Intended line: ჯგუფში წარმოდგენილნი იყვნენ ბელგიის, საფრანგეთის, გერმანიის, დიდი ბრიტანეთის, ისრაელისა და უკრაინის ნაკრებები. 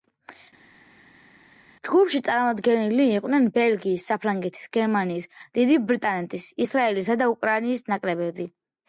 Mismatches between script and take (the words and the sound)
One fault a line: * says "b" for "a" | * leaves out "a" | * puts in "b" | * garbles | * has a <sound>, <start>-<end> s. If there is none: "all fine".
all fine